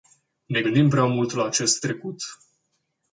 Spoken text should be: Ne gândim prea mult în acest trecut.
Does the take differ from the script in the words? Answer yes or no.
yes